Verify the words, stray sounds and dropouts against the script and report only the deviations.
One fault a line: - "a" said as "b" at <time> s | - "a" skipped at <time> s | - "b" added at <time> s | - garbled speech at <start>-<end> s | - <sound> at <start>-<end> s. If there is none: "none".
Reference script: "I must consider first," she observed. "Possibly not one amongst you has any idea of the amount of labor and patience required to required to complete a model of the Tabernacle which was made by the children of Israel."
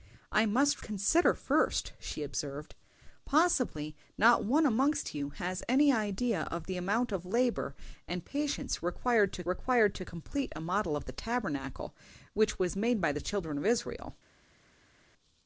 none